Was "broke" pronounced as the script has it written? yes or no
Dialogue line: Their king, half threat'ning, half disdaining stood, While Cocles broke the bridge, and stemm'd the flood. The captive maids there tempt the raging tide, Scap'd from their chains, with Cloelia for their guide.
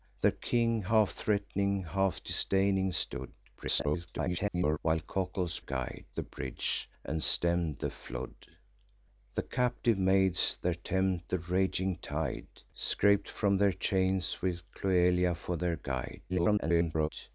no